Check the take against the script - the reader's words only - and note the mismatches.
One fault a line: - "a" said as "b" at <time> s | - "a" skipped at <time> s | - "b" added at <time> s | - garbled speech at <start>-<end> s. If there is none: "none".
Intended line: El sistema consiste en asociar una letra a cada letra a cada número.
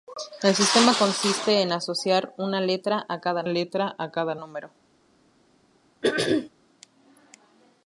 none